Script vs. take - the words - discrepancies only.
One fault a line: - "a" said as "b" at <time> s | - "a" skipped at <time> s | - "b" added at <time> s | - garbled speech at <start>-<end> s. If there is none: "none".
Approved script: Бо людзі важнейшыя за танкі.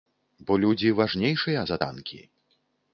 none